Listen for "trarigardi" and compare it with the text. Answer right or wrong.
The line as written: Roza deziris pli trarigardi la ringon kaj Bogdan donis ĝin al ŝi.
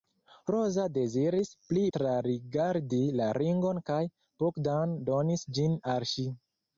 right